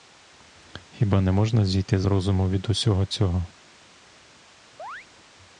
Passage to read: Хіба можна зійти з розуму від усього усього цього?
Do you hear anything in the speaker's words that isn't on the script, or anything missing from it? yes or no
yes